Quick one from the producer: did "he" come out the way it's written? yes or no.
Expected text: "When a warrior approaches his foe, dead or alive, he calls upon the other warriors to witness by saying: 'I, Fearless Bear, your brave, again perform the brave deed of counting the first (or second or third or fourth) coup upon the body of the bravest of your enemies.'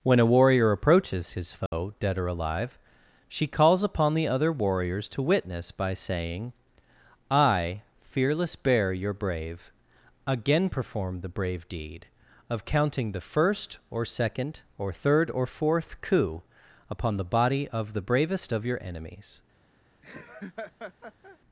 no